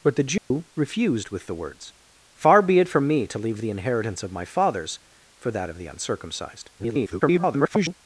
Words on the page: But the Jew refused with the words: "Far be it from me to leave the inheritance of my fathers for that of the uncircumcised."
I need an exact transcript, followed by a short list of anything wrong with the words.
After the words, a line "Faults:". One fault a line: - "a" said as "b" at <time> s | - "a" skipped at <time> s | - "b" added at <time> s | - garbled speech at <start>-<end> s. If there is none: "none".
But the Jew refused with the words: "Far be it from me to leave the inheritance of my fathers for that of the uncircumcised." [garbled]
Faults:
- garbled speech at 6.8-8.0 s